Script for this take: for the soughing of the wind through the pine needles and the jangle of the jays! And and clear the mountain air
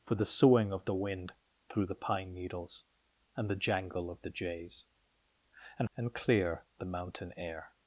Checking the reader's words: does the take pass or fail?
pass